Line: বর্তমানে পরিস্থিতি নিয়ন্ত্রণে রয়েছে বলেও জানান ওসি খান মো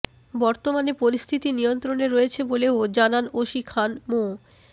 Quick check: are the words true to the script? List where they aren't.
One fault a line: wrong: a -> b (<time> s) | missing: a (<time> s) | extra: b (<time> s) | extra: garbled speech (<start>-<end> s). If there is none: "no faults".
no faults